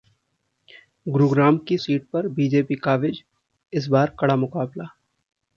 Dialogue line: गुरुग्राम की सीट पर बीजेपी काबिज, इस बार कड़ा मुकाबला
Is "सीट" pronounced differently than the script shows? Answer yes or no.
no